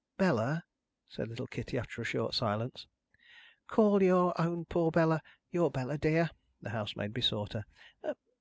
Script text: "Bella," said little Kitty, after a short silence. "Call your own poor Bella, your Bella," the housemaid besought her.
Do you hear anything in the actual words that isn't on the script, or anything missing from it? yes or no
yes